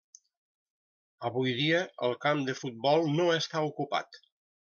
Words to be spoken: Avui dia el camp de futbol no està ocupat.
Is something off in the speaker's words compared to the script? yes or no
no